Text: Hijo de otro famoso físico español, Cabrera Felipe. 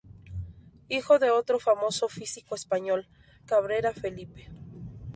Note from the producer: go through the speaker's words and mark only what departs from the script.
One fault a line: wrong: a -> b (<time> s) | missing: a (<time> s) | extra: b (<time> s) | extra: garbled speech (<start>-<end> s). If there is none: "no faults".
no faults